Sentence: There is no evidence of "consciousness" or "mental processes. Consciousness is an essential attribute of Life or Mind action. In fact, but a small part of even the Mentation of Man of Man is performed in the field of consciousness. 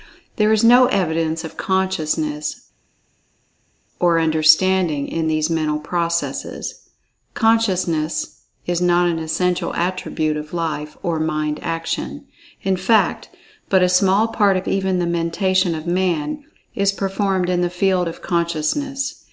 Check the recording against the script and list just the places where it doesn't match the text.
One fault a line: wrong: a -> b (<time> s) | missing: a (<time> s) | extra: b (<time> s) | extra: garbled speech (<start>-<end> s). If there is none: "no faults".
extra: understanding in these (4.2 s)
extra: not (8.8 s)
missing: of Man (16.4 s)